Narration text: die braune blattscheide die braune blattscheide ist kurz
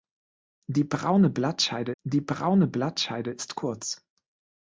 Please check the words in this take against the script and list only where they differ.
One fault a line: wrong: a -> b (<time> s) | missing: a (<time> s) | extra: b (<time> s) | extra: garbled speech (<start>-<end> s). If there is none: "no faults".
no faults